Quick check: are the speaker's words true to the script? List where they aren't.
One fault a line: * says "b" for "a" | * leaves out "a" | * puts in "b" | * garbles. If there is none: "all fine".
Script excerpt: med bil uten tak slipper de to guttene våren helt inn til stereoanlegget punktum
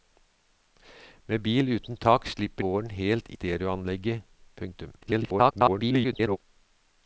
* leaves out "de to guttene"
* leaves out "inn til"
* garbles